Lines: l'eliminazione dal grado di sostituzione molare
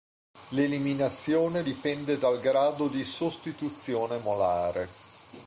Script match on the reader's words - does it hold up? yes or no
no